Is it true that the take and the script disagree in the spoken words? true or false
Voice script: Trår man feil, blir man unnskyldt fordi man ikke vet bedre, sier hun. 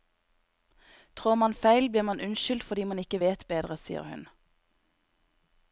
false